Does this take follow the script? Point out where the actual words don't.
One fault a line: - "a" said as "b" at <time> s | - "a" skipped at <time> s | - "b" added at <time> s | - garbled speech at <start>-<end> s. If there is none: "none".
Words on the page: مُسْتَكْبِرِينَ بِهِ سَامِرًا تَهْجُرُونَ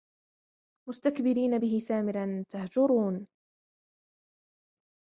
none